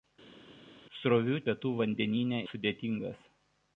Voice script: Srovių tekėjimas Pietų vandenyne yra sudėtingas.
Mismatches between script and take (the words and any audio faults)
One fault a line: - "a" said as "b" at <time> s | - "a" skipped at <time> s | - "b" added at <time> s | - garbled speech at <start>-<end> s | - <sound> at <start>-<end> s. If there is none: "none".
- "tekėjimas" skipped at 1.4 s
- "yra" skipped at 2.4 s